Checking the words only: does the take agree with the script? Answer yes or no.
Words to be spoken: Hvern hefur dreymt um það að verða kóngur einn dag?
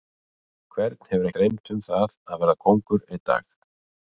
yes